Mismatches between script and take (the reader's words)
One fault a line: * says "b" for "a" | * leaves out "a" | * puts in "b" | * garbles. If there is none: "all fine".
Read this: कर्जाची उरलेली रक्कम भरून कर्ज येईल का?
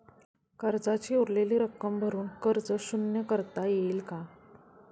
* puts in "शून्य करता"